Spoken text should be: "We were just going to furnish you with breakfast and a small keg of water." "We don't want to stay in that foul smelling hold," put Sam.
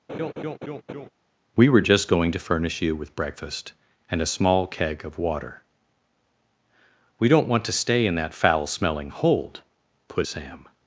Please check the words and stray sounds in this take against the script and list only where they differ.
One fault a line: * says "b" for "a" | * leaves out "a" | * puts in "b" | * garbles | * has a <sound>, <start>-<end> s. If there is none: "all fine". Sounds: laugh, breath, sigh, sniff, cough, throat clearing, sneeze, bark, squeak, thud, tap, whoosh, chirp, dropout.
* has a laugh, 0.1-1.1 s